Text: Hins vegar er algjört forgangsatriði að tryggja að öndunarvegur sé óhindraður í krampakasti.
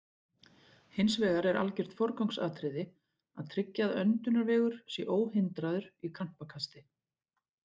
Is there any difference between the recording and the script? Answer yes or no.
no